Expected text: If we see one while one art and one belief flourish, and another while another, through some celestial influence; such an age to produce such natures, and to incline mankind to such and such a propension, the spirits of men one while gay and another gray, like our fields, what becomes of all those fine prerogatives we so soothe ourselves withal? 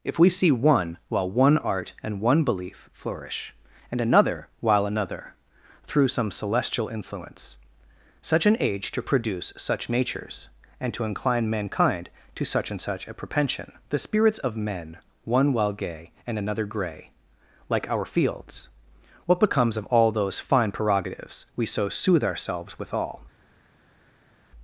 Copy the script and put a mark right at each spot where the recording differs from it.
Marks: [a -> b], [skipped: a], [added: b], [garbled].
If we see one while one art and one belief flourish, and another while another, through some celestial influence; such an age to produce such natures, and to incline mankind to such and such a propension, the spirits of men one while gay and another gray, like our fields, what becomes of all those fine prerogatives we so soothe ourselves withal?